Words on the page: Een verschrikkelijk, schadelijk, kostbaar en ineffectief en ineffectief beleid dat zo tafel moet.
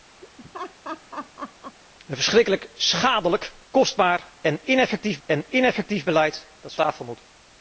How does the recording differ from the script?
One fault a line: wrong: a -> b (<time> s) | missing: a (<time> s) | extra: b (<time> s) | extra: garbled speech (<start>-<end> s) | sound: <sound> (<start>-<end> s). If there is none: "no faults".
sound: laugh (0.2-1.8 s)